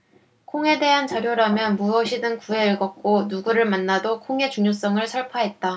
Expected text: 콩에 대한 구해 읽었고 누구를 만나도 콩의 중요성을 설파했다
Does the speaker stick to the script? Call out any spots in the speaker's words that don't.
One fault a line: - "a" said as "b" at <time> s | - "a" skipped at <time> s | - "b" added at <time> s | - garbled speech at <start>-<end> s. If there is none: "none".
- "자료라면 무엇이든" added at 1.1 s